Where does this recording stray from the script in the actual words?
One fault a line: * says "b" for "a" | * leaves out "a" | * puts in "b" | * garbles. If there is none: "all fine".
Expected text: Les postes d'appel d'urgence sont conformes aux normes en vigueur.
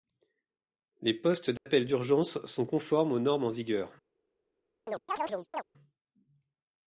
all fine